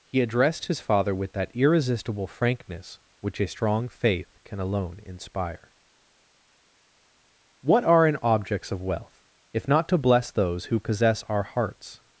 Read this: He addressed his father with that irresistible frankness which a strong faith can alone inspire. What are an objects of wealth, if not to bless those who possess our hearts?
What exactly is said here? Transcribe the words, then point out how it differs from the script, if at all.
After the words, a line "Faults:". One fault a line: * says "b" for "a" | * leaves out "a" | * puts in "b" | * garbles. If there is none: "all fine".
He addressed his father with that irresistible frankness which a strong faith can alone inspire. What are an objects of wealth, if not to bless those who possess our hearts?
Faults:
all fine